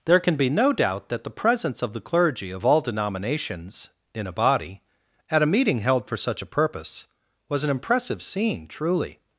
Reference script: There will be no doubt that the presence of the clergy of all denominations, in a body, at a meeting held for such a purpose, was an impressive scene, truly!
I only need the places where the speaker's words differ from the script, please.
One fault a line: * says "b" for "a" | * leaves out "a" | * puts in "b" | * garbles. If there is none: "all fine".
* says "can" for "will"